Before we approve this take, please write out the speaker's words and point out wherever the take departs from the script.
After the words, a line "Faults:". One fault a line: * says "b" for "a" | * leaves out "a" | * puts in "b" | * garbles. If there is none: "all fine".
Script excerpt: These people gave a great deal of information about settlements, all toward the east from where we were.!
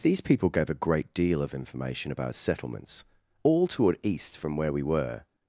These people gave a great deal of information about settlements, all toward east from where we were.!
Faults:
* leaves out "the"